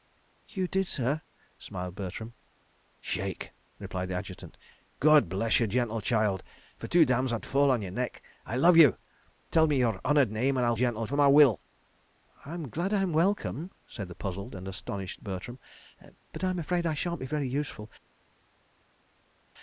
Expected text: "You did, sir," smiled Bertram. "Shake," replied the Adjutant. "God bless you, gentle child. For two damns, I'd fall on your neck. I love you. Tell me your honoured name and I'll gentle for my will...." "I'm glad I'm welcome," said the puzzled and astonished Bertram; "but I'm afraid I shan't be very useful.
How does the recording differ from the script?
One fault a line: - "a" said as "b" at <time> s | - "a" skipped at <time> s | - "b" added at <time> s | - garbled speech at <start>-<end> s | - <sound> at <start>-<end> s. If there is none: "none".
none